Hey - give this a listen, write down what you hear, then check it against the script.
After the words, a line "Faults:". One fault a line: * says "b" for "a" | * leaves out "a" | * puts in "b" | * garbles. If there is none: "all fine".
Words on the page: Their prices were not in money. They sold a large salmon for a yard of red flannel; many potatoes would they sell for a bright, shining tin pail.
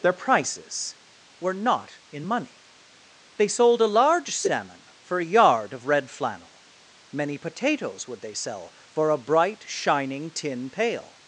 Their prices were not in money. They sold a large salmon for a yard of red flannel; many potatoes would they sell for a bright, shining tin pail.
Faults:
all fine